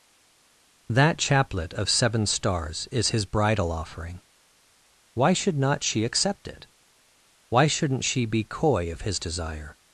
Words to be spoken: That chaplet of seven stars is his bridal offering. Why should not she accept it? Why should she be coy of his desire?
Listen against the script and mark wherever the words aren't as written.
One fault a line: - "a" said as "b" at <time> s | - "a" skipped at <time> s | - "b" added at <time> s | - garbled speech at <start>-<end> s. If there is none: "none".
- "should" said as "shouldn't" at 7.7 s